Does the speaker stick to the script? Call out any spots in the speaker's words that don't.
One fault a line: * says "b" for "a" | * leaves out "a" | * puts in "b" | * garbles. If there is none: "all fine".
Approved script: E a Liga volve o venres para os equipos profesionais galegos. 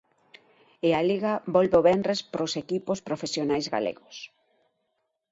all fine